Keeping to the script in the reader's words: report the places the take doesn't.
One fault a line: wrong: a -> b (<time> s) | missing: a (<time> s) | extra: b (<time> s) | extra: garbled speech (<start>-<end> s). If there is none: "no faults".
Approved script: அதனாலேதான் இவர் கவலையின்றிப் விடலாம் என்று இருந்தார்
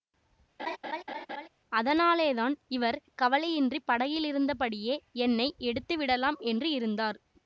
extra: படகிலிருந்தபடியே என்னை எடுத்து (3.9 s)